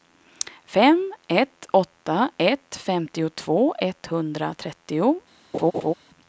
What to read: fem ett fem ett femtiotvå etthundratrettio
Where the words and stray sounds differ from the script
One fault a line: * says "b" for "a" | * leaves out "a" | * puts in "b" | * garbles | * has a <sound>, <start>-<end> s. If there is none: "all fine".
* says "åtta" for "fem"
* has a laugh, 5.5-5.9 s